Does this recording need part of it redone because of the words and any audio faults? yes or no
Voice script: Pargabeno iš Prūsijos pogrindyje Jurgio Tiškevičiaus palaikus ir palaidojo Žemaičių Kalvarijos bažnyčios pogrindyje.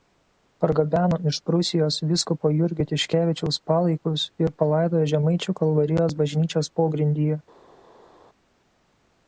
yes